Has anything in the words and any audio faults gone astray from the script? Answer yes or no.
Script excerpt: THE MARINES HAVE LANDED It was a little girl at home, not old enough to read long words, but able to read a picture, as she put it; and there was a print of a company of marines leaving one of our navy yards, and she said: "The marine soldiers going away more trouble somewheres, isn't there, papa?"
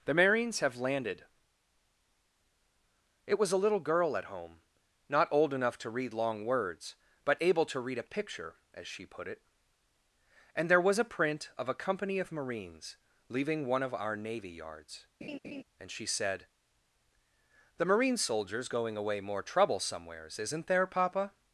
yes